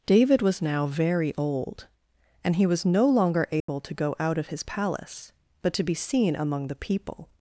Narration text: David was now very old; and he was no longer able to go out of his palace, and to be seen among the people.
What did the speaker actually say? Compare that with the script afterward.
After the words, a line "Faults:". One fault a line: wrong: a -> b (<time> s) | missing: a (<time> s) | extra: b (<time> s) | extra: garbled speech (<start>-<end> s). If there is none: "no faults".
David was now very old; and he was no longer able to go out of his palace, but to be seen among the people.
Faults:
wrong: and -> but (5.6 s)